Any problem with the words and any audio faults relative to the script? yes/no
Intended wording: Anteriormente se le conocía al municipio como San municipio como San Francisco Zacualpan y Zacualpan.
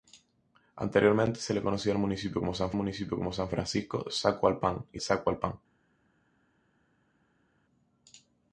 no